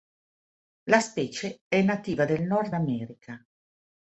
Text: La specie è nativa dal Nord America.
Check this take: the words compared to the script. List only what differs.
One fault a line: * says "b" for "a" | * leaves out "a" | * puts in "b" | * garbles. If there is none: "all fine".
* says "del" for "dal"